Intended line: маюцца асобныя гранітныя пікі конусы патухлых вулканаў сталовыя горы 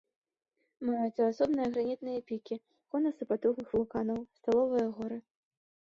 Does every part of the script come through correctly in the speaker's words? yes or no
yes